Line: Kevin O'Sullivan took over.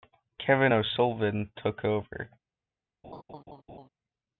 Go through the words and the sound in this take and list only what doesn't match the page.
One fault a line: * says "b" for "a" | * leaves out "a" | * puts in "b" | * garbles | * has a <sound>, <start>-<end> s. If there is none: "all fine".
* has a laugh, 3.0-3.9 s